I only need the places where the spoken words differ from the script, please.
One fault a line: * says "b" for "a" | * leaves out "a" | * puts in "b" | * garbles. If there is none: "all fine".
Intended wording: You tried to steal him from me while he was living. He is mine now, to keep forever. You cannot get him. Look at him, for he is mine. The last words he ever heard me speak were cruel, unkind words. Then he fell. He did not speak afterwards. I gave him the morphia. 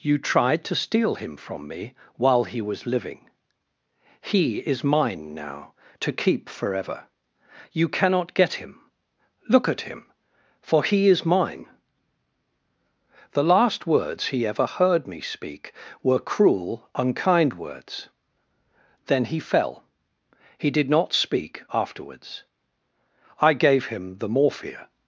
all fine